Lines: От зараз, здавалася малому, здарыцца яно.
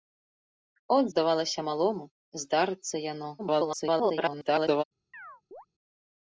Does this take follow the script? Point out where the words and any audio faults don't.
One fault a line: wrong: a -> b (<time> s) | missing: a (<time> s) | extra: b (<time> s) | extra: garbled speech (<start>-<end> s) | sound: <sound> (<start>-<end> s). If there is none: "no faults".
missing: зараз (1.1 s)
extra: garbled speech (3.4-4.8 s)
sound: chirp (5.1-5.7 s)